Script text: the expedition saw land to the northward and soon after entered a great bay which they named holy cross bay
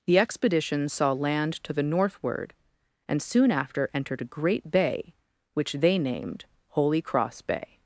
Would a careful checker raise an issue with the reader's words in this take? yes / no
no